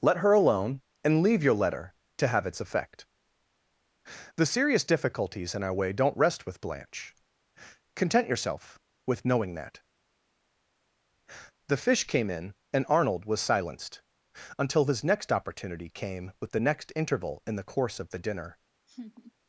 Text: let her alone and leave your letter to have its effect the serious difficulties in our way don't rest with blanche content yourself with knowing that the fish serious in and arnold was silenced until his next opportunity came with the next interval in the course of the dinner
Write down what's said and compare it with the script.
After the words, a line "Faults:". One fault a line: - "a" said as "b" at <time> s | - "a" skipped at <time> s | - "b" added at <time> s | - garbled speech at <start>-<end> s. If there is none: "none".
let her alone and leave your letter to have its effect the serious difficulties in our way don't rest with blanche content yourself with knowing that the fish came in and arnold was silenced until his next opportunity came with the next interval in the course of the dinner
Faults:
- "serious" said as "came" at 12.1 s